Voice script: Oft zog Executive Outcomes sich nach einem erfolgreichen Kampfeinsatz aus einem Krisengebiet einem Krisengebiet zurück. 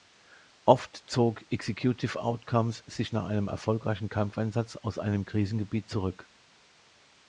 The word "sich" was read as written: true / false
true